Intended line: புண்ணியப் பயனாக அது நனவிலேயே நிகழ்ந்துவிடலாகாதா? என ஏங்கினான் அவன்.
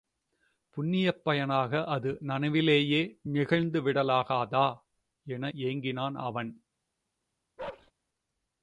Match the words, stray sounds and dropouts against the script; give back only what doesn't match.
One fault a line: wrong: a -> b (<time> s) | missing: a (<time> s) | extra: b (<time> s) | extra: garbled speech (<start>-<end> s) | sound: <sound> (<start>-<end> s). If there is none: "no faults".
sound: bark (7.6-7.9 s)